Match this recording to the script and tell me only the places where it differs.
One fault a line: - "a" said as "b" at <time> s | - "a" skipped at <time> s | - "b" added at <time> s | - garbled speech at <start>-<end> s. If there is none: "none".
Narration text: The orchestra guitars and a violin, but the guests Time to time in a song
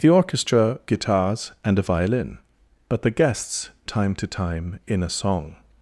none